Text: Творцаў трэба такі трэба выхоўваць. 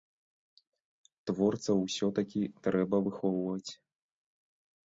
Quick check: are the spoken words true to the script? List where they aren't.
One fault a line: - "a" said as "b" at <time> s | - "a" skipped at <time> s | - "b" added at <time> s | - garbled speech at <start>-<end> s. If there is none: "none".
- "трэба" said as "усё" at 1.9 s